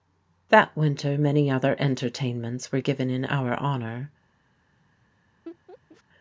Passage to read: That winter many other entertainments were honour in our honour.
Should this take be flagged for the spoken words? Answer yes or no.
yes